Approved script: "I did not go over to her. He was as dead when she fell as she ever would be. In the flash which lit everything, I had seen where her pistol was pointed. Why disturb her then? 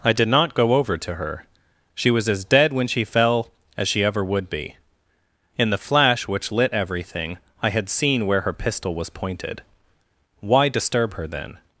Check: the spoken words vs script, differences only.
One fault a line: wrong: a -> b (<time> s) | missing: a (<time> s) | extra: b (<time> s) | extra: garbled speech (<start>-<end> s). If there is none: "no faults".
wrong: He -> She (1.9 s)